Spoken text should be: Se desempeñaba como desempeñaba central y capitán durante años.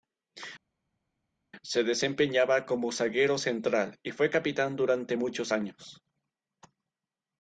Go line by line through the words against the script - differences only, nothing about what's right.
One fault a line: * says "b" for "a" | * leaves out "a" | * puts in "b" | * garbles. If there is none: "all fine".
* says "zaguero" for "desempeñaba"
* puts in "fue"
* puts in "muchos"